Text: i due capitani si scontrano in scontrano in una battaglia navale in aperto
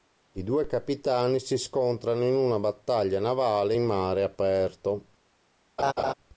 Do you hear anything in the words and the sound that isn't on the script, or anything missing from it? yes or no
yes